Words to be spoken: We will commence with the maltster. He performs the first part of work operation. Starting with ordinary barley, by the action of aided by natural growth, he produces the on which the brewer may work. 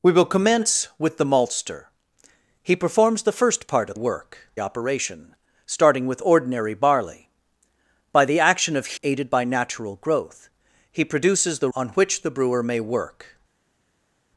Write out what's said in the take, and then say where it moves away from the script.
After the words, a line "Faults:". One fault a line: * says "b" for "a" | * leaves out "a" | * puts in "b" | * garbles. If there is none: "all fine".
We will commence with the maltster. He performs the first part of work operation. Starting with ordinary barley, by the action of aided by natural growth, he produces the on which the brewer may work.
Faults:
all fine